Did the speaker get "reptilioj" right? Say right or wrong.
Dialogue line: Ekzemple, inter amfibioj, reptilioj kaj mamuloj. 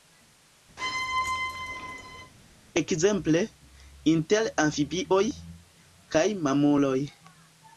wrong